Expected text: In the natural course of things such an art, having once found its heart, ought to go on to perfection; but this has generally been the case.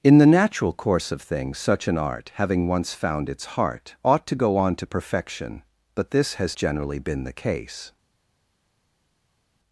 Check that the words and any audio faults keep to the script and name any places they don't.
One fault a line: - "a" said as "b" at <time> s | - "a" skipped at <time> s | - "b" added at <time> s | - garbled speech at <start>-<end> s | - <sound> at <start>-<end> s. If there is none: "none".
none